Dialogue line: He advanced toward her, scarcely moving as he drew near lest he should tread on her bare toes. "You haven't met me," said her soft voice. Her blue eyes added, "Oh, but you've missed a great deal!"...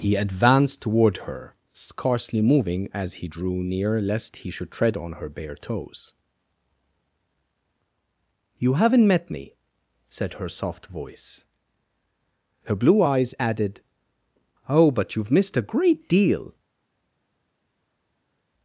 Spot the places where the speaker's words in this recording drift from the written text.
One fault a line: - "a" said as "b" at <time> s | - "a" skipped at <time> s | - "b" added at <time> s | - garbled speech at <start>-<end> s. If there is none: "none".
none